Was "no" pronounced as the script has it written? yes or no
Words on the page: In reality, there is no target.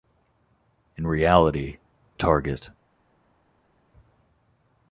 no